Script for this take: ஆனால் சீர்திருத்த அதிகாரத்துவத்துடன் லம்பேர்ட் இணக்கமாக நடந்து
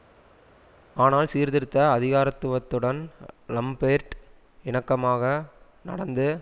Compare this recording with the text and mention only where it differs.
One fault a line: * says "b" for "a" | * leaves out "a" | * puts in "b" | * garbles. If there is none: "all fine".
all fine